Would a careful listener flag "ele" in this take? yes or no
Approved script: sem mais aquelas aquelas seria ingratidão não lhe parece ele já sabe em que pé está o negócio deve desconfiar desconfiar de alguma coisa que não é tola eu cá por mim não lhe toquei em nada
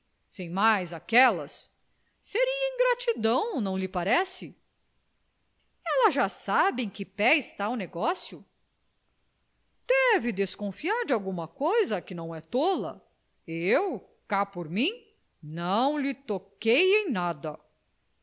yes